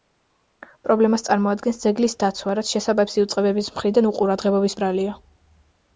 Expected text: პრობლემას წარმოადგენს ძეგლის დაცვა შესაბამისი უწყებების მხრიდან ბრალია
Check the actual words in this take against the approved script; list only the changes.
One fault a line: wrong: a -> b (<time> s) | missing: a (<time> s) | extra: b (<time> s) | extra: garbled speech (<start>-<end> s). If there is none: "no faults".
extra: რაც (2.6 s)
extra: უყურადღებობის (4.1 s)